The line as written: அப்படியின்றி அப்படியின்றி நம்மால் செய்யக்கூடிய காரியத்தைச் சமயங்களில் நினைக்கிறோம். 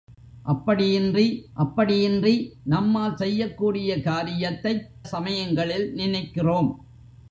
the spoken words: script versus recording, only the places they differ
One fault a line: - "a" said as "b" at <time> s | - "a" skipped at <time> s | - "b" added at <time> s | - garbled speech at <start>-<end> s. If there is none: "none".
none